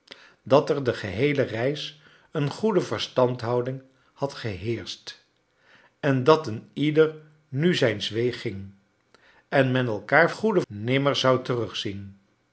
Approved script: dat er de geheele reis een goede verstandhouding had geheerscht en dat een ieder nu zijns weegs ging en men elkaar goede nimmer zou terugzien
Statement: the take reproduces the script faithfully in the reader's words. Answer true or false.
true